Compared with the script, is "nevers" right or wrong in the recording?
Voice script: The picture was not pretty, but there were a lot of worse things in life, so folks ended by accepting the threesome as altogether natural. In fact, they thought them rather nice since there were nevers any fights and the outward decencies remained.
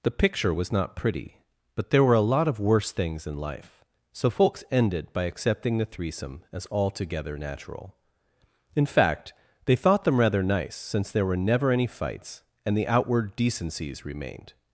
wrong